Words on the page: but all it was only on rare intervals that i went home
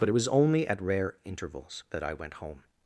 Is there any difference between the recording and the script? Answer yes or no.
yes